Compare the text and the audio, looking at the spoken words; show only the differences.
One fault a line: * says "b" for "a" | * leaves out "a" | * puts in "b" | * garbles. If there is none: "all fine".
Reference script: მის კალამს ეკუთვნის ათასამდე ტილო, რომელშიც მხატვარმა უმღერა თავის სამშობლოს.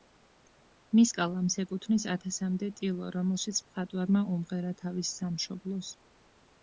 all fine